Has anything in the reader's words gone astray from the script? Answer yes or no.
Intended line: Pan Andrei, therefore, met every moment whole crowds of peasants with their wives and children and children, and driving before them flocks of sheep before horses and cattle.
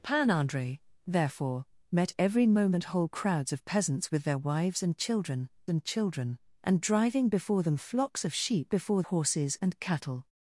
no